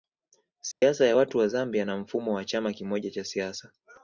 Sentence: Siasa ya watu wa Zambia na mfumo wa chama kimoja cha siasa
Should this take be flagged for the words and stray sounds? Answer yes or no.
yes